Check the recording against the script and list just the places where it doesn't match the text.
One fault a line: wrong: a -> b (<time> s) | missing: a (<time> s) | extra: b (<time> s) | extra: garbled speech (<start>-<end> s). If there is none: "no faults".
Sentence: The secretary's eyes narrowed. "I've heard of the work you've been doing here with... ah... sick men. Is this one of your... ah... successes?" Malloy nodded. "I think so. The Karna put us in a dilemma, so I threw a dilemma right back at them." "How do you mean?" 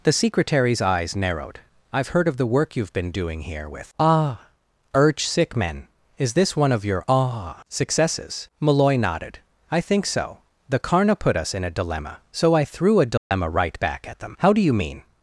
extra: urge (5.0 s)